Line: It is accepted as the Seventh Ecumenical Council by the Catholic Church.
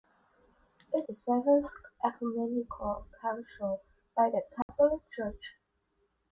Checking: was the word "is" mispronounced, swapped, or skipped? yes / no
yes